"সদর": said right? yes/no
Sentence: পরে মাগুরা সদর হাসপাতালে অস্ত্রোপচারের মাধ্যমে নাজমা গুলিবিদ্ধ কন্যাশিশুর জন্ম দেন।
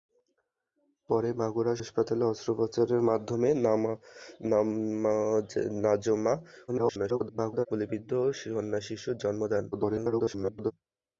no